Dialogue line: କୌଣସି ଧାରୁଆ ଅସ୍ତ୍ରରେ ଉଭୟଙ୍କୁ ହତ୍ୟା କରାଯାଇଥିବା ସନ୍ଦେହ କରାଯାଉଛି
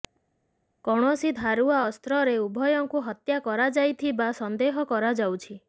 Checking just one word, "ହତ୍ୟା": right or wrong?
right